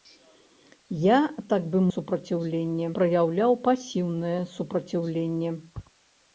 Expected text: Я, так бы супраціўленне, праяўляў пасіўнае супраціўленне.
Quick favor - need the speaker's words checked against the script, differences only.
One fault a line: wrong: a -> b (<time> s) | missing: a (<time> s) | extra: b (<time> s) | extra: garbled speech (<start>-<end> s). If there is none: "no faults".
no faults